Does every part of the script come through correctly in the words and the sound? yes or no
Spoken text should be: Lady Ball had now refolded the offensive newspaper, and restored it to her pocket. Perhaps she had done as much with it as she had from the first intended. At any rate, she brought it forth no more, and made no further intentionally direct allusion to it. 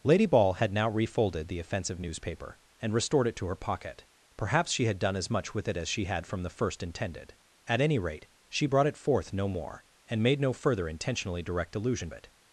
no